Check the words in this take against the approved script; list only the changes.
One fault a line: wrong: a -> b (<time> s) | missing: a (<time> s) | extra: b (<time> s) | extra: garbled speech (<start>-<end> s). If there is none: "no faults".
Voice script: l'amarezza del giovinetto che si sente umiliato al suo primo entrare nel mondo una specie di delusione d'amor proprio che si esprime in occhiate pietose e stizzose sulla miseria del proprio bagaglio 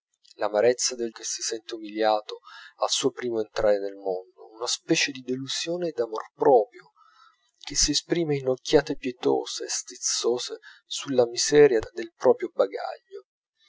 missing: giovinetto (1.1 s)